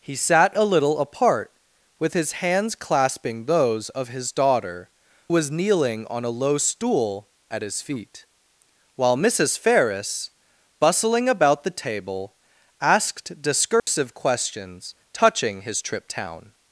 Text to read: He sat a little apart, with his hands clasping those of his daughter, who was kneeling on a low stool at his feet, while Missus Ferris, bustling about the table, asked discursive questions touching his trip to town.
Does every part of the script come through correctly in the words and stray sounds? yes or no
no